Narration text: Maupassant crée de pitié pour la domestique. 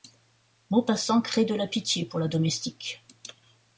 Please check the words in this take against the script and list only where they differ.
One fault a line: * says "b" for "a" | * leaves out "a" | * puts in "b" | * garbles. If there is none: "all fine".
* puts in "la"